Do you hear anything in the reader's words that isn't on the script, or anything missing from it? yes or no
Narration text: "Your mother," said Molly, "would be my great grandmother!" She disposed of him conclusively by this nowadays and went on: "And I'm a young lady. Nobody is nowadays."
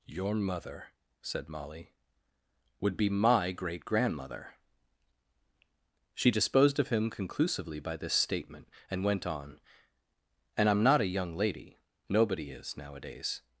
yes